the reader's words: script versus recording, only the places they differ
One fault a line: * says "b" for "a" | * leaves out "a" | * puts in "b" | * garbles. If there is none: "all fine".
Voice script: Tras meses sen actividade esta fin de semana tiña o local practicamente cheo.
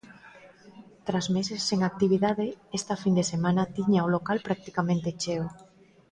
all fine